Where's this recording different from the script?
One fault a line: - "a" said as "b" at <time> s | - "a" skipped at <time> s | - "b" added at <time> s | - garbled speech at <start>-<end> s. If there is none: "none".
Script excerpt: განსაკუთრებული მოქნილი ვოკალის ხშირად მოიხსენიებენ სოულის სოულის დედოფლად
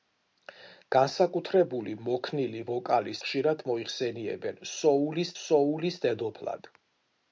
none